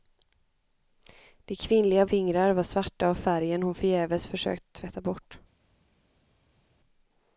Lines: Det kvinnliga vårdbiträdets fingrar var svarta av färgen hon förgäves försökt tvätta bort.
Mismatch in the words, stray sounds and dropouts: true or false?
true